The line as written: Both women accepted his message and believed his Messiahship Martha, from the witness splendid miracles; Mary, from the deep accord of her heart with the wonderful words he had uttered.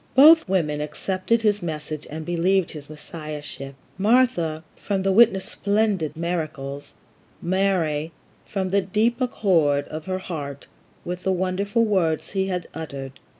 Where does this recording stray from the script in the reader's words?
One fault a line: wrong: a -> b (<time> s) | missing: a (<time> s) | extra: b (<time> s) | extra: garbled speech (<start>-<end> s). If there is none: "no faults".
no faults